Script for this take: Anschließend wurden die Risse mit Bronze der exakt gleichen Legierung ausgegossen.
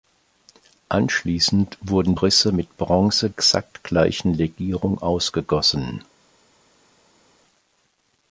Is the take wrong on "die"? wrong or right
wrong